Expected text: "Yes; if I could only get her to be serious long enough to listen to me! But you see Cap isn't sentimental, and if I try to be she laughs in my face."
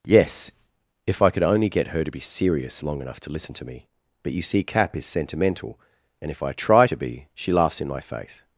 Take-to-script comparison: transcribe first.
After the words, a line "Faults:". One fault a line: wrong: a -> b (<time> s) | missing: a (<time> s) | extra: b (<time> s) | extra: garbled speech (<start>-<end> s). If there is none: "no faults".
"Yes; if I could only get her to be serious long enough to listen to me! But you see Cap is sentimental, and if I try to be she laughs in my face."
Faults:
wrong: isn't -> is (5.0 s)